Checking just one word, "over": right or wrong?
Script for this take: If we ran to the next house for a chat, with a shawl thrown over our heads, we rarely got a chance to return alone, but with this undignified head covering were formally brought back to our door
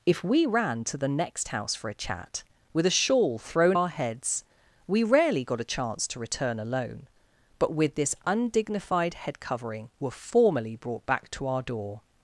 wrong